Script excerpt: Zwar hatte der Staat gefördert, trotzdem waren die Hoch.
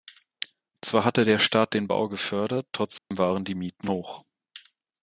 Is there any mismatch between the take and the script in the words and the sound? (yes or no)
yes